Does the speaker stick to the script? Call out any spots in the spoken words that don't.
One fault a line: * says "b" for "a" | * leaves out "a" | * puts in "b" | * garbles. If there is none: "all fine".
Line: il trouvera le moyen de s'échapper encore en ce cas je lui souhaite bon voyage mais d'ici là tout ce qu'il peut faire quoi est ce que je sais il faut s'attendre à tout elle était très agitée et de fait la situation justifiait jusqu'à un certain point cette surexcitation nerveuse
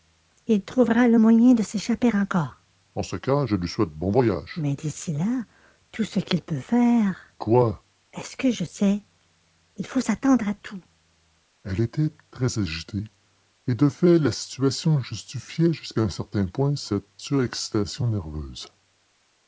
all fine